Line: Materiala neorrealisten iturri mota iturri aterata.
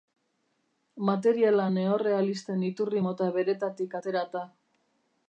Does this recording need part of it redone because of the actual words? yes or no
yes